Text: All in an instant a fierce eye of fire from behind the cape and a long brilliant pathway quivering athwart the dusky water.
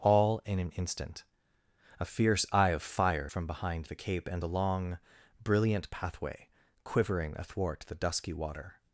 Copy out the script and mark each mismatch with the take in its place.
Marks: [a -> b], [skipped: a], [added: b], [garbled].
All in an instant a fierce eye of fire from behind the cape and a long brilliant pathway quivering athwart the dusky water.